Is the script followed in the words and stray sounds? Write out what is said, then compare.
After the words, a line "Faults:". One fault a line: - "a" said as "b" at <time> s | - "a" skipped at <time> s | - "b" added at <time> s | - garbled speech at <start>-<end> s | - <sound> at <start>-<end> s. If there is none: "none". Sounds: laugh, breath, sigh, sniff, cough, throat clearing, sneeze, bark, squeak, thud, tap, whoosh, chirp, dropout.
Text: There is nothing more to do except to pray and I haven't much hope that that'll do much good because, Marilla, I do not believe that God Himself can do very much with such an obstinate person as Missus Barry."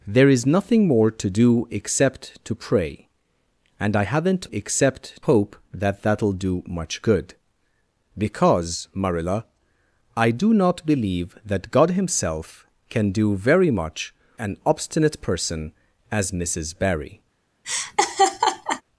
There is nothing more to do except to pray and I haven't except hope that that'll do much good because, Marilla, I do not believe that God Himself can do very much an obstinate person as Missus Barry."
Faults:
- "much" said as "except" at 4.5 s
- "with such" skipped at 14.1 s
- laugh at 17.6-18.8 s